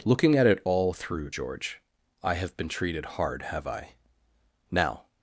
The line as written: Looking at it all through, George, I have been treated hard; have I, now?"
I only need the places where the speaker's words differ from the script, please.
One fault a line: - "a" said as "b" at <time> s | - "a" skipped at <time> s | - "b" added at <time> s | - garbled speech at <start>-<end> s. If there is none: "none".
none